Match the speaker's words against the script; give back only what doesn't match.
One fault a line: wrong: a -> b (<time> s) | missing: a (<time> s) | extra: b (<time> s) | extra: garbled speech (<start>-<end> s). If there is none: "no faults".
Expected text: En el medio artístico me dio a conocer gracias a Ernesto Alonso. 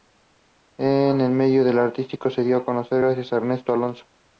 wrong: me -> se (2.3 s)